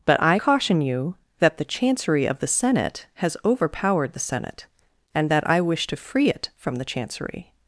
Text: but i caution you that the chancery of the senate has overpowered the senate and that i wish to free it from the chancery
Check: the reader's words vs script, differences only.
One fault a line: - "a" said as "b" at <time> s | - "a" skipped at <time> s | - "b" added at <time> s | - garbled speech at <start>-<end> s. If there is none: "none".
none